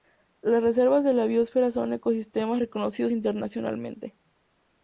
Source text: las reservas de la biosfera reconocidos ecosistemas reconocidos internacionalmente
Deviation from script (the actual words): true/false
true